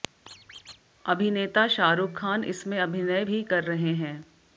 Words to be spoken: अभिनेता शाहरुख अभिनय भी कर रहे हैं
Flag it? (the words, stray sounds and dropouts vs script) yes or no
yes